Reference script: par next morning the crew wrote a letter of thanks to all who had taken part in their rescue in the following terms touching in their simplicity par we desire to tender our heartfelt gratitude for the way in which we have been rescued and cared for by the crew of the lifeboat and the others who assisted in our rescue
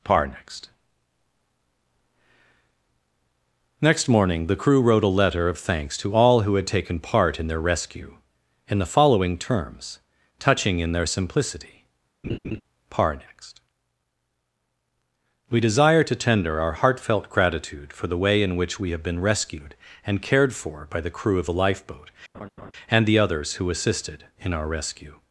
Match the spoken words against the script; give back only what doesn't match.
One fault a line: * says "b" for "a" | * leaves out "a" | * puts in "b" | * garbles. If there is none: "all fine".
* puts in "next"
* puts in "next"